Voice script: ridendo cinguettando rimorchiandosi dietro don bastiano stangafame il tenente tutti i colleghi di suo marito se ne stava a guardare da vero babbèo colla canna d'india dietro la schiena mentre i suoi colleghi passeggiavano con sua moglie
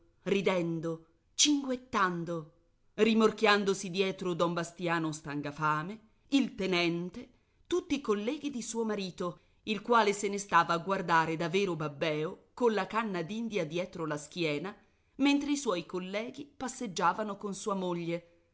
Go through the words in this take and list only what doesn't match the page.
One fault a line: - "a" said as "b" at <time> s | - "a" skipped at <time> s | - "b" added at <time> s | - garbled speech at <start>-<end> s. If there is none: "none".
- "il quale" added at 9.6 s